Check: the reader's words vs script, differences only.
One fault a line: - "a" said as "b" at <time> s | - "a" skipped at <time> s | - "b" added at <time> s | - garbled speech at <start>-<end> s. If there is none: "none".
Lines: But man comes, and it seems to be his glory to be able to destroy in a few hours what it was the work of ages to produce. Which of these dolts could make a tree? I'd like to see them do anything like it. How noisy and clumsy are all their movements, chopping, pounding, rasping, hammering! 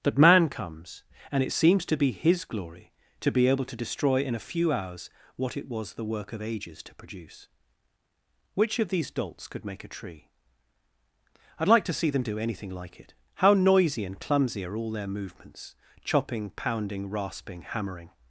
- "But" said as "That" at 0.0 s